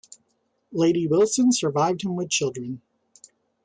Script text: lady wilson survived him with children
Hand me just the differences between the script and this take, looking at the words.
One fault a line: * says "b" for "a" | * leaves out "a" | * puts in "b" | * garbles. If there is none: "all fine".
all fine